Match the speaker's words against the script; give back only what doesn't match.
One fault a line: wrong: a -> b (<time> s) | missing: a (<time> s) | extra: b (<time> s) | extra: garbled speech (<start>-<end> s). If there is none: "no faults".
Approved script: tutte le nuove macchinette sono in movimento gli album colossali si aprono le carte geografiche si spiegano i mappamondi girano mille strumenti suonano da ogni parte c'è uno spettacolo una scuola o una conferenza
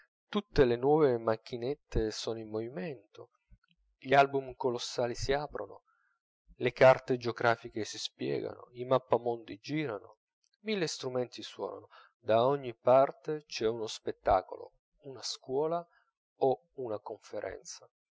no faults